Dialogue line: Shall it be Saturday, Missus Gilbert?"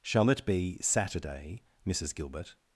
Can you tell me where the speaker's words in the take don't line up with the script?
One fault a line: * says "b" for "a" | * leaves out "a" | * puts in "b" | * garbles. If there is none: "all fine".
all fine